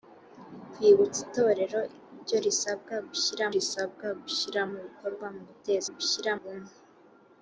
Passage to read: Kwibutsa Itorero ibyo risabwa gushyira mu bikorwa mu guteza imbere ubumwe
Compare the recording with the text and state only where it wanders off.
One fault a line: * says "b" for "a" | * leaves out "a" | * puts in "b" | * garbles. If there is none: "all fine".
* puts in "risabwa gushyira"
* says "gushyira" for "imbere"